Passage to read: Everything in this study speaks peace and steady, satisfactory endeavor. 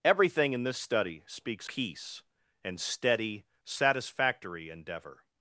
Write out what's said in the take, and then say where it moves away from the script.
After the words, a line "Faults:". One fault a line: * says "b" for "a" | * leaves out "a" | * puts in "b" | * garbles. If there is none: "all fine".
Everything in this study speaks peace and steady, satisfactory endeavor.
Faults:
all fine